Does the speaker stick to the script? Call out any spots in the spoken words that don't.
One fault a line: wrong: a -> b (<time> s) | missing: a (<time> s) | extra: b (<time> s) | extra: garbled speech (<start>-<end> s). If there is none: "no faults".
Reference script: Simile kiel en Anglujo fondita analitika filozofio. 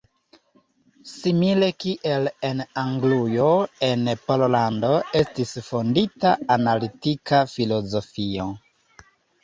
extra: en Pollando estis (3.9 s)